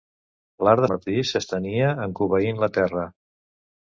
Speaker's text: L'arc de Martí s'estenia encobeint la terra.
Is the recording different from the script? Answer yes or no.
no